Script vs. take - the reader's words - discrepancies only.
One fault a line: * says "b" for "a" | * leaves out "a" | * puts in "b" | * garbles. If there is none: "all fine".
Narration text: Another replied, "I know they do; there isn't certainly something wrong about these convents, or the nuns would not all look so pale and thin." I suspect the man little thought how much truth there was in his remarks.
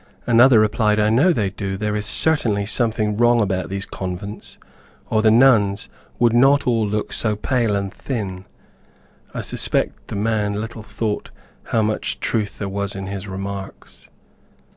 * says "is" for "isn't"